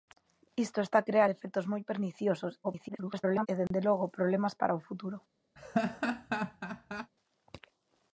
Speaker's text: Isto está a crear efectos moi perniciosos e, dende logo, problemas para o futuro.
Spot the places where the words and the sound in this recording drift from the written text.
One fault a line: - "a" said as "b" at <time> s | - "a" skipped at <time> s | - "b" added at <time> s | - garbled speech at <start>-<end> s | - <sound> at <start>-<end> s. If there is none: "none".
- garbled speech at 2.6-3.5 s
- dropout at 3.7-3.7 s
- laugh at 5.6-7.1 s